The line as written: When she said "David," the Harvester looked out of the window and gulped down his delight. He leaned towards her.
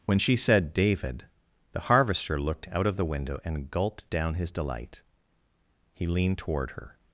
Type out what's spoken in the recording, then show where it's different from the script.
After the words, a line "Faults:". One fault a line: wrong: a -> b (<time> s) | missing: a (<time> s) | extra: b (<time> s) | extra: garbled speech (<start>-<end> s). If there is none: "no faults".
When she said "David," the Harvester looked out of the window and gulped down his delight. He leaned toward her.
Faults:
wrong: towards -> toward (6.4 s)